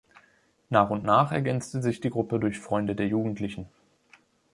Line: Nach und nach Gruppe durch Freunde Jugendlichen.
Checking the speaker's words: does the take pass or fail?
fail